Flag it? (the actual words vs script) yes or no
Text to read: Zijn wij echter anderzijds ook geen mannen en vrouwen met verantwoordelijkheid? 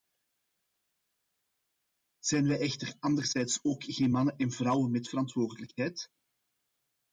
no